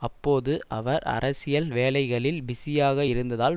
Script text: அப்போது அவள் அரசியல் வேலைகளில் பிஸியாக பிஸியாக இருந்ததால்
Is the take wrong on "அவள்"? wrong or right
wrong